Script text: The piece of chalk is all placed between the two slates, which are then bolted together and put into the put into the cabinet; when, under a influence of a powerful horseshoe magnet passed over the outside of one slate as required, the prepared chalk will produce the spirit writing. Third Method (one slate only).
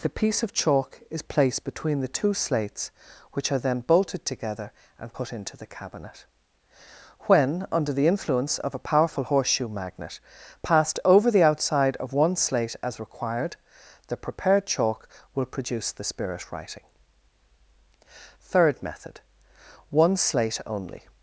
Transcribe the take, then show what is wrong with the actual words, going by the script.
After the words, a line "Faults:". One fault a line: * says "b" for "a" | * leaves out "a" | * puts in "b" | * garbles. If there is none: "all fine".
The piece of chalk is placed between the two slates, which are then bolted together and put into the cabinet; when, under the influence of a powerful horseshoe magnet passed over the outside of one slate as required, the prepared chalk will produce the spirit writing. Third Method (one slate only).
Faults:
* leaves out "all"
* leaves out "put into the"
* says "the" for "a"